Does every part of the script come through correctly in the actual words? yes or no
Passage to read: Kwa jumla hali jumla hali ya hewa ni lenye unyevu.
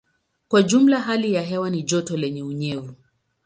no